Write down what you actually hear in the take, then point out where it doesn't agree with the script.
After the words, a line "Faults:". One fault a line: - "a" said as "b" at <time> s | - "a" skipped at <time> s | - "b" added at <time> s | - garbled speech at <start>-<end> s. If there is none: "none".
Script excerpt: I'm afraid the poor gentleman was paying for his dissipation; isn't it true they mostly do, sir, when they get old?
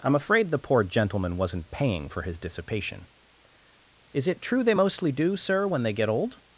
I'm afraid the poor gentleman wasn't paying for his dissipation; is it true they mostly do, sir, when they get old?
Faults:
- "was" said as "wasn't" at 1.4 s
- "isn't" said as "is" at 4.1 s